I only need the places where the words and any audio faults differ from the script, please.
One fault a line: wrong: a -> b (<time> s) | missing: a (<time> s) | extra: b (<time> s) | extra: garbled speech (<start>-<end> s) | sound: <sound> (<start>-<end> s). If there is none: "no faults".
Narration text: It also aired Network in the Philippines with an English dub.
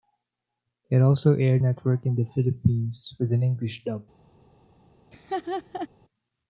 sound: laugh (5.1-5.9 s)